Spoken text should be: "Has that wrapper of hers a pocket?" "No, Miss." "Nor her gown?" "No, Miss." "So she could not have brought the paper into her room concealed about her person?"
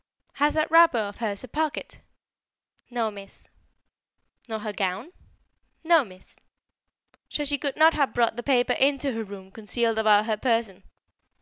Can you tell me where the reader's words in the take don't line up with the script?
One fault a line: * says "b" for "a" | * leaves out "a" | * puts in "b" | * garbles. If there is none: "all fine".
all fine